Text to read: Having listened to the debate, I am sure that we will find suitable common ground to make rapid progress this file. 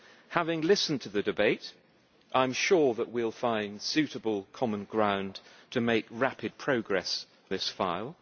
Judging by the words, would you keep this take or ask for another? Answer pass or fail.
pass